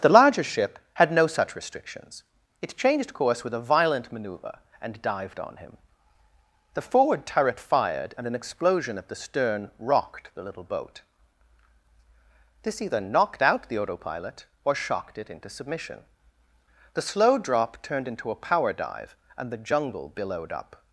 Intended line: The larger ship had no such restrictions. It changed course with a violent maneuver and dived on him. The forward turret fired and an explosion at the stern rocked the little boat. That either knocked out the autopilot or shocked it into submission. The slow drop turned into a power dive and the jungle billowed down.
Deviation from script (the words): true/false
true